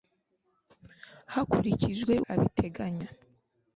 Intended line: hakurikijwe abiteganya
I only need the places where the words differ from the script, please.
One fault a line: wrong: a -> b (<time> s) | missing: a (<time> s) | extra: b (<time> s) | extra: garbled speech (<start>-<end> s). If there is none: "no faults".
no faults